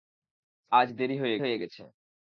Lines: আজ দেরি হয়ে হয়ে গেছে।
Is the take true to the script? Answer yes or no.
yes